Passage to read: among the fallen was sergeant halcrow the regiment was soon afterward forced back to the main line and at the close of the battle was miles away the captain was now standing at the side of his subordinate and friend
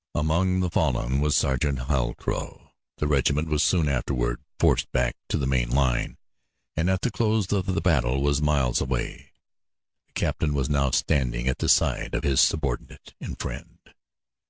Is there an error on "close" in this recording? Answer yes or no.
no